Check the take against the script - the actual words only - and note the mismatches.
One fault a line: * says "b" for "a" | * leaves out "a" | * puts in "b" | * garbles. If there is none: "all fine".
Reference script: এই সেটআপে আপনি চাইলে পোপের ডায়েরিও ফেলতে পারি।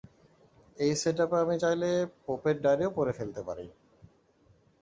* says "আমি" for "আপনি"
* puts in "পড়ে"